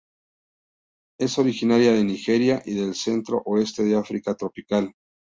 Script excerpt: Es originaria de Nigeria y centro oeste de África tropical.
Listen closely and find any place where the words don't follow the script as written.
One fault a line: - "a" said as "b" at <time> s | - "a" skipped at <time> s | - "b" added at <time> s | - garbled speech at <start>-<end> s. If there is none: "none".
- "del" added at 2.7 s